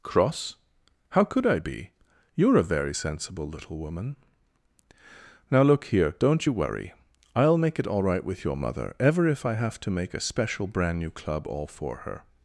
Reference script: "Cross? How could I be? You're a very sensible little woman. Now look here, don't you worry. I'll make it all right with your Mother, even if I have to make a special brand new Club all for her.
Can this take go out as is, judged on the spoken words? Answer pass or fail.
fail